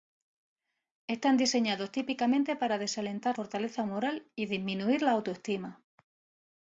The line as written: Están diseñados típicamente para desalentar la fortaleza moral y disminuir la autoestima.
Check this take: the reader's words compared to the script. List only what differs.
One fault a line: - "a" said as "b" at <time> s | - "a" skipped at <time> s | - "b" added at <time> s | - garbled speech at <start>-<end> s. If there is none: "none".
- "la" skipped at 3.4 s